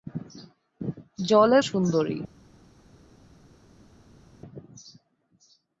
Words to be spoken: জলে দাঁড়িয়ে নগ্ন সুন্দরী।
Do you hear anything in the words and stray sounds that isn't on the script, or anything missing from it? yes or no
yes